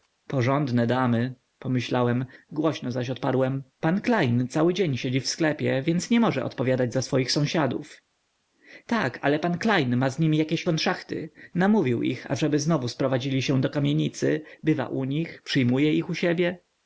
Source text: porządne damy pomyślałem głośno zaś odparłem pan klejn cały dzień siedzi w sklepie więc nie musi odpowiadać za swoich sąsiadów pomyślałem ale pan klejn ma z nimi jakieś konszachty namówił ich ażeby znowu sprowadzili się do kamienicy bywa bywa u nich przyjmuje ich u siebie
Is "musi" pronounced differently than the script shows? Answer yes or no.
yes